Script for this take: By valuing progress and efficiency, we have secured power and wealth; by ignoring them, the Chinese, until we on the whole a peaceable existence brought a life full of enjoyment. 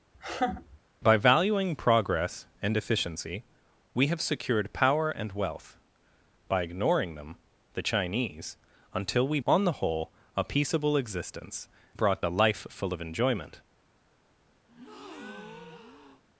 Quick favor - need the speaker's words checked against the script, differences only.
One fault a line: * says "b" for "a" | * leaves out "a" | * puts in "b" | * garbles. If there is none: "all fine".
all fine